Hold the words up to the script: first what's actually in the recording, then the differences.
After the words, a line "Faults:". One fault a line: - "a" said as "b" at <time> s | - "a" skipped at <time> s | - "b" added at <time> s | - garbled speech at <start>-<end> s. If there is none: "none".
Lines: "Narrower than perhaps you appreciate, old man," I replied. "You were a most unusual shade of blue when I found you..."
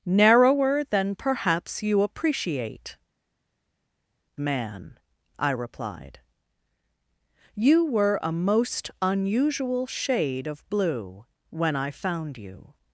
"Narrower than perhaps you appreciate, man," I replied. "You were a most unusual shade of blue when I found you..."
Faults:
- "old" skipped at 3.0 s